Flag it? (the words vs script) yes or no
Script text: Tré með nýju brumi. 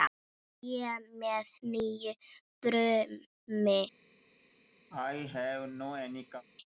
no